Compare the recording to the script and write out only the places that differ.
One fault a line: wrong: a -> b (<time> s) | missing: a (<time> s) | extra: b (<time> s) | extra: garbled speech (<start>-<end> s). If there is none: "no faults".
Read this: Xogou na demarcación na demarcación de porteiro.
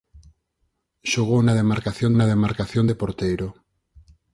no faults